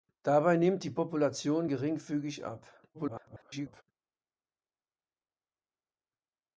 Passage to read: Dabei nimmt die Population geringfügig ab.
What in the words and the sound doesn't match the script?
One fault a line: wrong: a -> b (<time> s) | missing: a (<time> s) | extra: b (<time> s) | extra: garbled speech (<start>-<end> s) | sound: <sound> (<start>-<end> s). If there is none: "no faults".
extra: garbled speech (2.9-3.8 s)